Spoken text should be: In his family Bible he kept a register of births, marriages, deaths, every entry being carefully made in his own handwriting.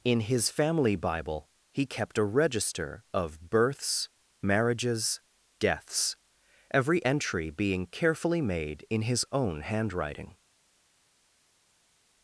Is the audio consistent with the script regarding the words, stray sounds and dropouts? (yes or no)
yes